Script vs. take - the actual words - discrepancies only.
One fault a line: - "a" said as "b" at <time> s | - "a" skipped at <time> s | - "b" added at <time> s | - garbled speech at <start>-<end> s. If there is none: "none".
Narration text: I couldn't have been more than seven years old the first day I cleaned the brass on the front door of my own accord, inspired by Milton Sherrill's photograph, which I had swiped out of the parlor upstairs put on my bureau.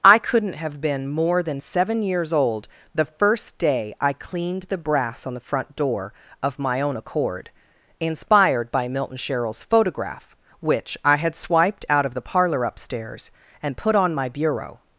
- "and" added at 13.6 s